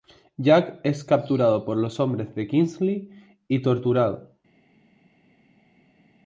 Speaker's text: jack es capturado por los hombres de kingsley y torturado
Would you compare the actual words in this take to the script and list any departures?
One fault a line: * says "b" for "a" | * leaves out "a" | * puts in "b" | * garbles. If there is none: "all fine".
all fine